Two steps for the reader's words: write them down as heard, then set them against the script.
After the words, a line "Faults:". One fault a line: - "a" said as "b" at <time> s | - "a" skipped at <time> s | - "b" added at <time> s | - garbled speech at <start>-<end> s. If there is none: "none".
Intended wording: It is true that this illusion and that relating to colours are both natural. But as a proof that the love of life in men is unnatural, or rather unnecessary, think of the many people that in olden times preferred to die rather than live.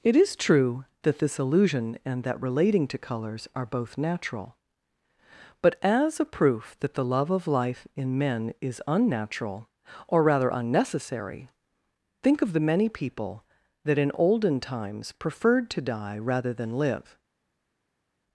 It is true that this illusion and that relating to colours are both natural. But as a proof that the love of life in men is unnatural, or rather unnecessary, think of the many people that in olden times preferred to die rather than live.
Faults:
none